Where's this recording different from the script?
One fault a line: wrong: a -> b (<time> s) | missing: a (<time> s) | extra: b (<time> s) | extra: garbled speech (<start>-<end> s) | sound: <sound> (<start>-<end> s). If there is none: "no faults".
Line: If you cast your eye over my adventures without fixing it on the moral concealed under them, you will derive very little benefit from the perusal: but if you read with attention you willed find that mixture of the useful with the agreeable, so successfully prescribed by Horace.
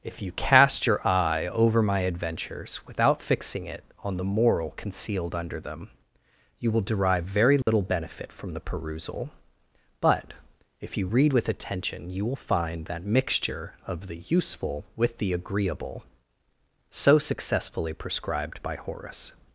sound: dropout (7.6-7.7 s)
wrong: willed -> will (12.3 s)